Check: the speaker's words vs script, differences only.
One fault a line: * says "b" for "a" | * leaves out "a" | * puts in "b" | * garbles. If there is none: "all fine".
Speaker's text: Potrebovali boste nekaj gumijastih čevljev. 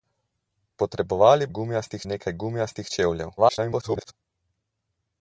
* says "gumijastih" for "boste"
* garbles